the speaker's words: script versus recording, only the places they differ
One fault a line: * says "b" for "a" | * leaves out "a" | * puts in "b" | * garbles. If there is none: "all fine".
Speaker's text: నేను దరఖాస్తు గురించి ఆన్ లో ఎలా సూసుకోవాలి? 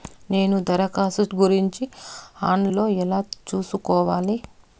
all fine